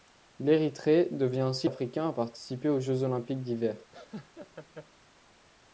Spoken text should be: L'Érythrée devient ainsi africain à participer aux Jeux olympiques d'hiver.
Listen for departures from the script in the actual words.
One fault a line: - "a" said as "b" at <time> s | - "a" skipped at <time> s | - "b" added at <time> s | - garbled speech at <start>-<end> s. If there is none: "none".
none